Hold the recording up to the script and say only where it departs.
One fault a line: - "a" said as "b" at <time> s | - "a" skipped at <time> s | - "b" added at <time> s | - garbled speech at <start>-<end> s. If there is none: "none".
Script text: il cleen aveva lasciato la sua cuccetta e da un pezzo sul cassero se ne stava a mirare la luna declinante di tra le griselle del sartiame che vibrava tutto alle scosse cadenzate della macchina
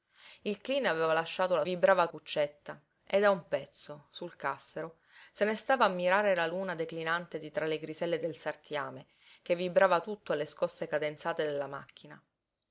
- "sua" said as "vibrava" at 1.6 s